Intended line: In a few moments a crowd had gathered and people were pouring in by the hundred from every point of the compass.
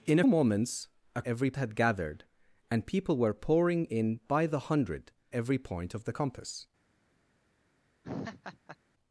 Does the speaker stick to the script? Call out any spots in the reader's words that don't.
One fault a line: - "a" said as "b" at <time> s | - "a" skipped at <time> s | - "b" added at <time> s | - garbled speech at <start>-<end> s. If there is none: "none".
- "few" skipped at 0.2 s
- "crowd" said as "every" at 1.3 s
- "from" skipped at 5.1 s